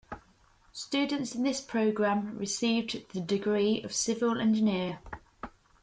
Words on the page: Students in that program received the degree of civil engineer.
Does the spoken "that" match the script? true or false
false